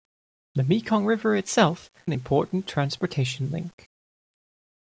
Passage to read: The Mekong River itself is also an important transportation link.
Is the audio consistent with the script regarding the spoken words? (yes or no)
no